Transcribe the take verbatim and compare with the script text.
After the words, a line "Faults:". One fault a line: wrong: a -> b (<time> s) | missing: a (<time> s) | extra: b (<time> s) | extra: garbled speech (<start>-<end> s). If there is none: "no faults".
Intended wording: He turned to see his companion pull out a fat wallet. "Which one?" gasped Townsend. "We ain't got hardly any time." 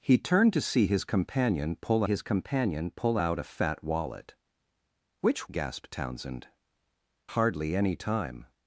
He turned to see his companion pull his companion pull out a fat wallet. "Which?" gasped Townsend. "Hardly any time."
Faults:
extra: his companion pull (2.0 s)
missing: one (5.5 s)
missing: We ain't got (6.5 s)